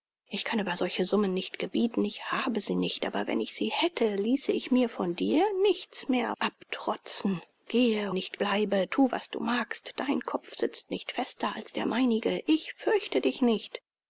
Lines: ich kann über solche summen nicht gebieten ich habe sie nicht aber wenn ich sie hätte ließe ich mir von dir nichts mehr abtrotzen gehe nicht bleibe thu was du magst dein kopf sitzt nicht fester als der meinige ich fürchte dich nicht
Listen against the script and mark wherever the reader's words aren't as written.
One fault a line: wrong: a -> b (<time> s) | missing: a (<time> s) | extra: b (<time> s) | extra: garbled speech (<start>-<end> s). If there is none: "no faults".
no faults